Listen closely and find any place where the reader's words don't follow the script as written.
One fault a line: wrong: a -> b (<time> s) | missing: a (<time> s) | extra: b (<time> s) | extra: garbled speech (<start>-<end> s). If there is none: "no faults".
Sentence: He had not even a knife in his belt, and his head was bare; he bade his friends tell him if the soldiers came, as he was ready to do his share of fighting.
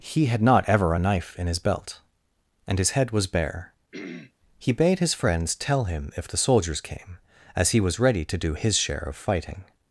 wrong: even -> ever (0.7 s)